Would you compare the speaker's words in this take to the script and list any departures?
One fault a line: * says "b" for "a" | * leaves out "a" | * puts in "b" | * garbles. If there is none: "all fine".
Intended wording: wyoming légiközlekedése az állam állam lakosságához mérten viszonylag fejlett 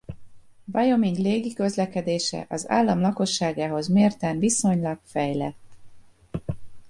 * leaves out "állam"